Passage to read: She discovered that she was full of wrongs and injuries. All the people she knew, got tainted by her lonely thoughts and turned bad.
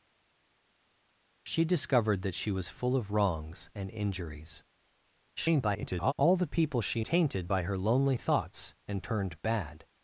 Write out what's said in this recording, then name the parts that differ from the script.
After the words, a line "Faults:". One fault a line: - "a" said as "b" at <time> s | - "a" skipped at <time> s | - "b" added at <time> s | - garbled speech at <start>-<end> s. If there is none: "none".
She discovered that she was full of wrongs and injuries. [garbled] All the people she tainted by her lonely thoughts and turned bad.
Faults:
- garbled speech at 5.4-6.1 s
- "knew got" skipped at 7.0 s